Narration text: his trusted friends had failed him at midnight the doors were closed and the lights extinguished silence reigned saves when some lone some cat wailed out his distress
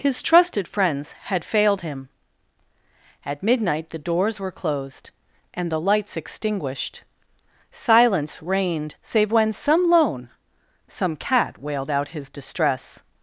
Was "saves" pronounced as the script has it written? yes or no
no